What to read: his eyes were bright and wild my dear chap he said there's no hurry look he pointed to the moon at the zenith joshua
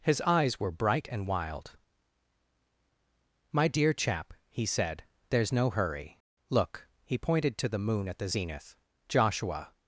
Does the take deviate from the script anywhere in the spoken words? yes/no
no